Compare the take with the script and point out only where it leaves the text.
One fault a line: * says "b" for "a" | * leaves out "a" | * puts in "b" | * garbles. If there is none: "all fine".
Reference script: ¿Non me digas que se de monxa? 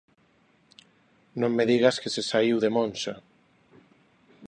* puts in "saíu"